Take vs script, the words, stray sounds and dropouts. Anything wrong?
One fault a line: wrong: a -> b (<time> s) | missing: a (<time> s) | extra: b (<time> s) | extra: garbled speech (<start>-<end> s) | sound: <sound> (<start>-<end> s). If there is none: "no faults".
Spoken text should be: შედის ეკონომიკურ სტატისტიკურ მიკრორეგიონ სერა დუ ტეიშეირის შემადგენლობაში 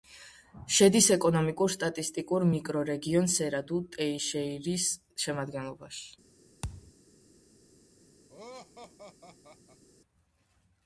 sound: thud (6.6-6.9 s)
sound: laugh (8.3-9.8 s)